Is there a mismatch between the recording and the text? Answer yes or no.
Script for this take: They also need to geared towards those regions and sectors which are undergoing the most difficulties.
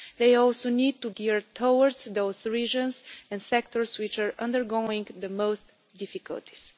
no